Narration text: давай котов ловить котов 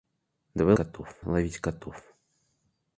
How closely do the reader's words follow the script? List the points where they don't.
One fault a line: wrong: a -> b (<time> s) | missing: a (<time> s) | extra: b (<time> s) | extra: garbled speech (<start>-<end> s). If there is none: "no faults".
no faults